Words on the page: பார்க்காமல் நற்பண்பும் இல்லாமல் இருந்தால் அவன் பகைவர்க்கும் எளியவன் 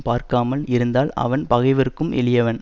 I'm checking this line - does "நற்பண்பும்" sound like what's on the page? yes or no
no